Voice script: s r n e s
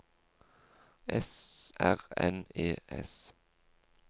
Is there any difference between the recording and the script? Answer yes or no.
no